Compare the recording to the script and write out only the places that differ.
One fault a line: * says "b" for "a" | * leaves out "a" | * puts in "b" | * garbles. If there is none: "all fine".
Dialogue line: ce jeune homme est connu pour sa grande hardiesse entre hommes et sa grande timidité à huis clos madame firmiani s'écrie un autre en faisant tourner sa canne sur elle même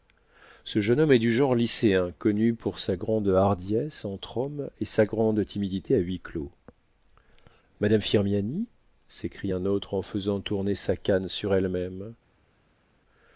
* puts in "du genre lycéen"